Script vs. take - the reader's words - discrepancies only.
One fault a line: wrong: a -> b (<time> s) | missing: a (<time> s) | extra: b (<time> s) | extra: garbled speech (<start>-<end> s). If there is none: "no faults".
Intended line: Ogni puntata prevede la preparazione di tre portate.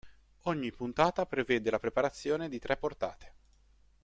no faults